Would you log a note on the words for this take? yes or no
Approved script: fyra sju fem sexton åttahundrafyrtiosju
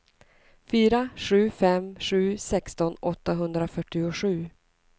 yes